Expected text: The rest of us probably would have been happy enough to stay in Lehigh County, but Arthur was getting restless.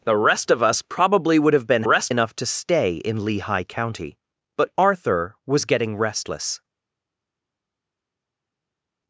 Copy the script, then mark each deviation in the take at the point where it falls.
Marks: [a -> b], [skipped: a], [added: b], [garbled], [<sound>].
The rest of us probably would have been [happy -> rest] enough to stay in Lehigh County, but Arthur was getting restless.